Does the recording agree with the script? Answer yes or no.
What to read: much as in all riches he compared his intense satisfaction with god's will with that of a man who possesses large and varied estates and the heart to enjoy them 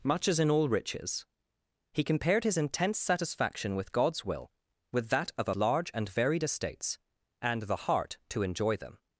no